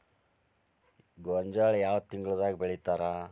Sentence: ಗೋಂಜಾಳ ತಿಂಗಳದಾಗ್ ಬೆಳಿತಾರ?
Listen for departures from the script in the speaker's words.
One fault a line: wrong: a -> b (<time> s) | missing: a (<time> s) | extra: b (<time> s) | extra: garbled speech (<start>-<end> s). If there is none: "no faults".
extra: ಯಾವ (1.8 s)